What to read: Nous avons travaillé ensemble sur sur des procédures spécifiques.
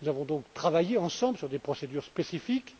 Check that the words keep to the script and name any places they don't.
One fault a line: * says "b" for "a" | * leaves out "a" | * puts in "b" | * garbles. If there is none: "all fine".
* puts in "donc"
* leaves out "sur"